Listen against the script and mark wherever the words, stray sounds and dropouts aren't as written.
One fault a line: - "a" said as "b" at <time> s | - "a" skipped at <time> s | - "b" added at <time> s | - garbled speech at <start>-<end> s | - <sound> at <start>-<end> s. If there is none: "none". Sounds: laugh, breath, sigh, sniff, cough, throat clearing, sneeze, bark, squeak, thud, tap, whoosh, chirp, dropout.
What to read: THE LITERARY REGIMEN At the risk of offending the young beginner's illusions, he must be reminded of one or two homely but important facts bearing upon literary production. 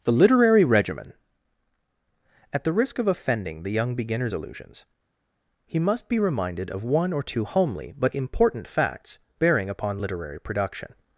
none